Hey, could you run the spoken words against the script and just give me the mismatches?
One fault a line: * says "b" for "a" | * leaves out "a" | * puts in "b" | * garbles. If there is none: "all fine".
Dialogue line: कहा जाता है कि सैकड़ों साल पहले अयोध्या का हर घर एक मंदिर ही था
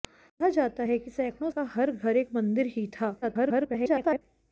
* leaves out "साल पहले अयोध्या"
* garbles